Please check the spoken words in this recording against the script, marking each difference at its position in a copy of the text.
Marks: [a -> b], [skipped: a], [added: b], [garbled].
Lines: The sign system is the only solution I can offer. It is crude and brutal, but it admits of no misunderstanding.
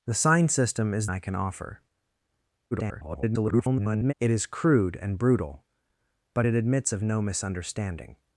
The sign system is [skipped: the only solution] I can offer. [garbled] It is crude and brutal, but it admits of no misunderstanding.